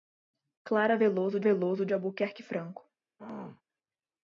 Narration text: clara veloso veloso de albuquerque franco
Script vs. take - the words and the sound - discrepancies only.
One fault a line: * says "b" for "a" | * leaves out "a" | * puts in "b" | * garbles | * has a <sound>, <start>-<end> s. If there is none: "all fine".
* has a throat clearing, 3.2-3.6 s